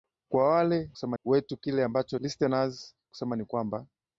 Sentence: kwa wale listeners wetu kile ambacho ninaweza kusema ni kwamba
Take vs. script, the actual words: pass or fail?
fail